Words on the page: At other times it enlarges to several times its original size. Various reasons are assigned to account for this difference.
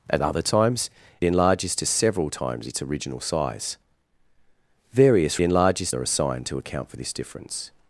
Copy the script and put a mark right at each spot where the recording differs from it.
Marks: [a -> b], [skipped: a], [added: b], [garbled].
At other times [skipped: it] enlarges to several times its original size. Various [reasons -> enlarges] are assigned to account for this difference.